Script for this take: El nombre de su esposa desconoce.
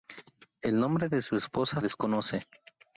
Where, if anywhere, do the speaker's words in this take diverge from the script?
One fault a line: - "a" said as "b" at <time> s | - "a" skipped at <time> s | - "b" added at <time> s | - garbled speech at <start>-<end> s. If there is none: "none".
none